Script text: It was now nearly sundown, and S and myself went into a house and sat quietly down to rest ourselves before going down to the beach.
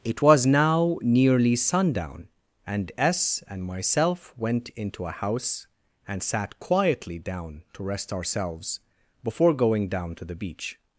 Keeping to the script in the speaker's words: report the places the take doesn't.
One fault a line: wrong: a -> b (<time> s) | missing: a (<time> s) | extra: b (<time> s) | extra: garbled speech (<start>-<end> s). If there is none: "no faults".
no faults